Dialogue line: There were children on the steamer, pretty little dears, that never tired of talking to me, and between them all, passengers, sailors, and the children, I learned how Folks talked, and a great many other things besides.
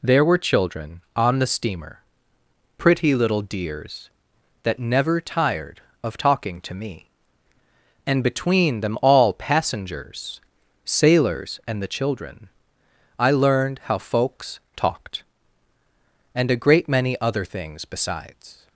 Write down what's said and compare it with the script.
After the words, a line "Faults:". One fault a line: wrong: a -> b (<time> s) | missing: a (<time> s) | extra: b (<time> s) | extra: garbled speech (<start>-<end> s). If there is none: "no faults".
There were children on the steamer, pretty little dears, that never tired of talking to me, and between them all, passengers, sailors, and the children, I learned how Folks talked, and a great many other things besides.
Faults:
no faults